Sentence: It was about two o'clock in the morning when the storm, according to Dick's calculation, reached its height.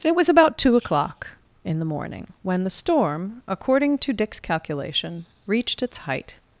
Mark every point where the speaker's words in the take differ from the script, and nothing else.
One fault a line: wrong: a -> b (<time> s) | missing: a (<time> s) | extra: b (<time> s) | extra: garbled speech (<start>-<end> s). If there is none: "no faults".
no faults